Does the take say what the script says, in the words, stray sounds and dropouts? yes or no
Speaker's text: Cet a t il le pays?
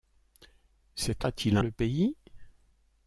yes